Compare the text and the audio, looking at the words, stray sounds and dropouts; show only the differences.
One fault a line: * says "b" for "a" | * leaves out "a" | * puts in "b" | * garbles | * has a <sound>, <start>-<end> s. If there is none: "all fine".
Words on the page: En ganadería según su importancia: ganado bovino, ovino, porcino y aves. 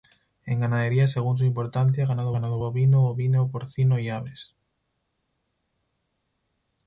* puts in "ganado"